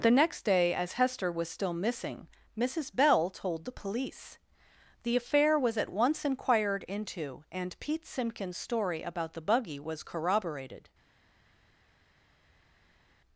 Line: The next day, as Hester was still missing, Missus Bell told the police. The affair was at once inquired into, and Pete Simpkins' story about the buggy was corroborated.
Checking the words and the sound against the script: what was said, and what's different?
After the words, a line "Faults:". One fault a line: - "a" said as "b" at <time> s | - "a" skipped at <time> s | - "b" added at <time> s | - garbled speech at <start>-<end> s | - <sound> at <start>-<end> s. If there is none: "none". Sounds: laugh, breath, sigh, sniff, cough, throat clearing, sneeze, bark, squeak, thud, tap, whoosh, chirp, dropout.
The next day, as Hester was still missing, Missus Bell told the police. The affair was at once inquired into, and Pete Simpkins' story about the buggy was corroborated.
Faults:
none